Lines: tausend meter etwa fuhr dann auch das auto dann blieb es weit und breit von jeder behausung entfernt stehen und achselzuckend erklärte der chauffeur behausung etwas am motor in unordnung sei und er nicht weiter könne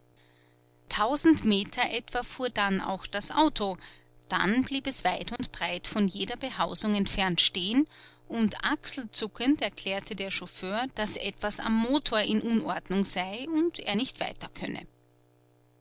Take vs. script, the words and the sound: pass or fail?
fail